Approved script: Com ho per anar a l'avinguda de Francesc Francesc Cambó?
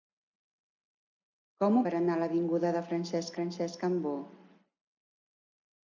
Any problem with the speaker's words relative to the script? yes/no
no